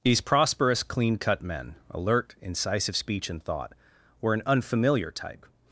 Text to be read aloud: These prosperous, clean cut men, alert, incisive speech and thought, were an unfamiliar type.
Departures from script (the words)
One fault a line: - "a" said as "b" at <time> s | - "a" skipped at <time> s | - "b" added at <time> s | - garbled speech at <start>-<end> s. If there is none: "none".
none